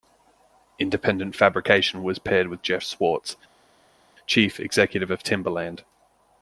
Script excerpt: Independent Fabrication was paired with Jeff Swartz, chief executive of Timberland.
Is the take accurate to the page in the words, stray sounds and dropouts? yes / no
yes